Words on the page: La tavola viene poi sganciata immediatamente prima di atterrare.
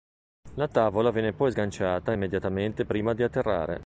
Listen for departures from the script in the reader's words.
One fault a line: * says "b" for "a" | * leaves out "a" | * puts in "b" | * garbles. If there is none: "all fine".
all fine